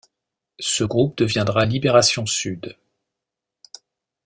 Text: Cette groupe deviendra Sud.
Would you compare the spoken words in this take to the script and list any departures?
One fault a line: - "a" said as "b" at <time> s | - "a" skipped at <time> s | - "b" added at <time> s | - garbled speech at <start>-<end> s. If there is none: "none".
- "Cette" said as "Ce" at 0.6 s
- "Libération" added at 1.6 s